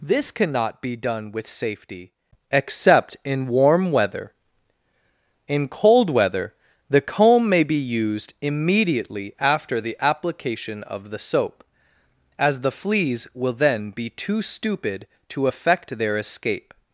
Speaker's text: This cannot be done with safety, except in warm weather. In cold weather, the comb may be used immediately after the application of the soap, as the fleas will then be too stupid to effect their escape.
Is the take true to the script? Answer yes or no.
yes